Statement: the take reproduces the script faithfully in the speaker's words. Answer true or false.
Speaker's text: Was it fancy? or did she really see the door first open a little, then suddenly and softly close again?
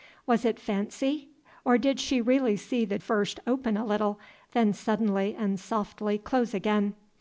false